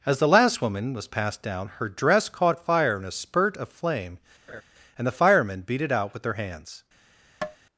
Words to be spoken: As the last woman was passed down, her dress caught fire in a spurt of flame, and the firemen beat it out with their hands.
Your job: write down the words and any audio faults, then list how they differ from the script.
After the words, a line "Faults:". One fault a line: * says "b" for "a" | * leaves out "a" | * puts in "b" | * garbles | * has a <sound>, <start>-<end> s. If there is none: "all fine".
As the last woman was passed down, her dress caught fire in a spurt of flame, and the firemen beat it out with their hands.
Faults:
* has a laugh, 4.5-4.6 s
* has a tap, 7.4-7.6 s